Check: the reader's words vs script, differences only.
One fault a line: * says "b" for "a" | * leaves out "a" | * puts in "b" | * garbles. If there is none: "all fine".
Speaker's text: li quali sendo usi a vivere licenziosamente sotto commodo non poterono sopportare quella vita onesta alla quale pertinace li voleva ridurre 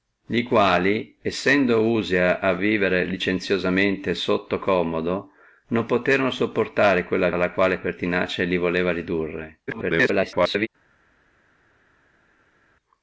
* leaves out "vita onesta"
* garbles